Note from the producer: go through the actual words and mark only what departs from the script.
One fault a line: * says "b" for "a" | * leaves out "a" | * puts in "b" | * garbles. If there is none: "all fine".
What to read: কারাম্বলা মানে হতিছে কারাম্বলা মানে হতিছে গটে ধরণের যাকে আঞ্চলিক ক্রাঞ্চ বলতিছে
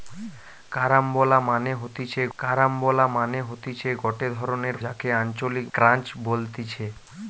all fine